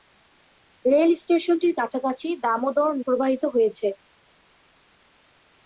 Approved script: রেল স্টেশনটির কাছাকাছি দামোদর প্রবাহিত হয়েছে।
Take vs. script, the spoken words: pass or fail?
pass